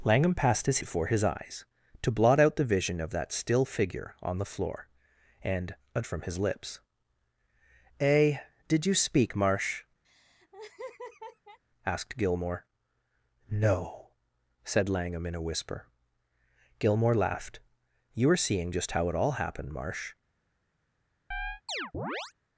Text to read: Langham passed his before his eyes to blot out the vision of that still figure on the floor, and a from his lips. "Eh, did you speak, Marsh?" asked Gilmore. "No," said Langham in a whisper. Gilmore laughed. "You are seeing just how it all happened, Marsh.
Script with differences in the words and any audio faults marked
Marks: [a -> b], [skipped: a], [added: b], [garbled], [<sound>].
Langham passed his before his eyes to blot out the vision of that still figure on the floor, and a from his lips. "Eh, did you speak, Marsh?" [laugh] asked Gilmore. "No," said Langham in a whisper. Gilmore laughed. "You are seeing just how it all happened, Marsh. [chirp]